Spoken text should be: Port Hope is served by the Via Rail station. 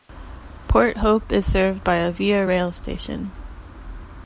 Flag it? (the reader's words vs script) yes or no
yes